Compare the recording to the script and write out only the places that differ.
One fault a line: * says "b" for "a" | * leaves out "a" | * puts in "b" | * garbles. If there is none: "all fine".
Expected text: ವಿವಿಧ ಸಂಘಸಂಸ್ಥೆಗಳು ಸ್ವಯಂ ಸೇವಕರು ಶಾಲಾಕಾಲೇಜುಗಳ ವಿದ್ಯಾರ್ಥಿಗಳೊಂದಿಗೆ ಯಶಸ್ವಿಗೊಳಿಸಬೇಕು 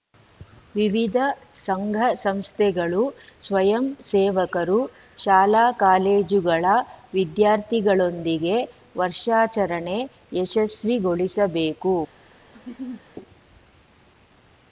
* puts in "ವರ್ಷಾಚರಣೆ"